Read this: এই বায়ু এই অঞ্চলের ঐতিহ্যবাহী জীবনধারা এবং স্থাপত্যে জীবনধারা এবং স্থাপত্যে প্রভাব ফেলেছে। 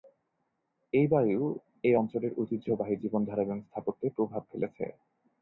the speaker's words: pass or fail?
fail